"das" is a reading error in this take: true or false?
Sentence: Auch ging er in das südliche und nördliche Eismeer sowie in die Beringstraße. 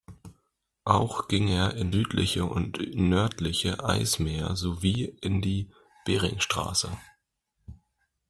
true